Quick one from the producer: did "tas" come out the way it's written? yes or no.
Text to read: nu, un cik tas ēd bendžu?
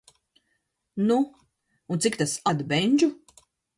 yes